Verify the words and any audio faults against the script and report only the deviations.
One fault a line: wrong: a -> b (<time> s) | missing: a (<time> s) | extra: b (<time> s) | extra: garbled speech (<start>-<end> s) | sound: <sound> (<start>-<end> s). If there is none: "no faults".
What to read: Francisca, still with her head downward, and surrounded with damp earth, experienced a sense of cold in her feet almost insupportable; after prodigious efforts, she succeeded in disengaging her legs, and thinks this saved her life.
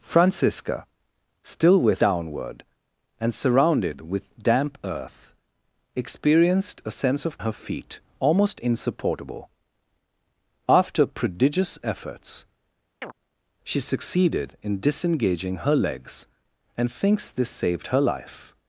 missing: her head (2.0 s)
missing: cold in (7.4 s)
sound: chirp (13.0-13.1 s)